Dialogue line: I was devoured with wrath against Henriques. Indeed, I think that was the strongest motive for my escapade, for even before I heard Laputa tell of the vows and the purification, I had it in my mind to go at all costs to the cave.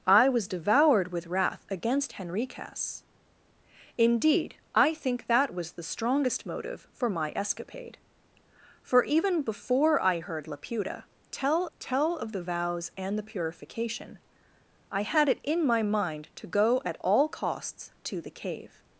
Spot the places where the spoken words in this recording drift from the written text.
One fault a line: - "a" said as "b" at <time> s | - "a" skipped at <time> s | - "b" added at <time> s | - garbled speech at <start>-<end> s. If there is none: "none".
- "tell" added at 11.8 s